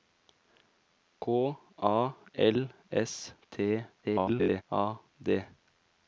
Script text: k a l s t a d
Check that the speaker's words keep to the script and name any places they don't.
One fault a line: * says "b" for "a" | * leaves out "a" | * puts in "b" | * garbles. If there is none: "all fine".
* garbles